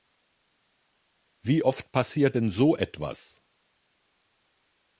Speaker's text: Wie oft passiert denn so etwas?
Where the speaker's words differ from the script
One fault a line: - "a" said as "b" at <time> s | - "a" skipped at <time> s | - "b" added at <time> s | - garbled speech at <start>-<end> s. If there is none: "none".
none